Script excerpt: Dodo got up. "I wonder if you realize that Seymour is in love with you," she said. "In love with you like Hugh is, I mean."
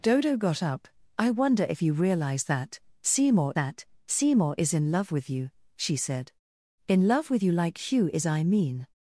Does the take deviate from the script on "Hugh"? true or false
false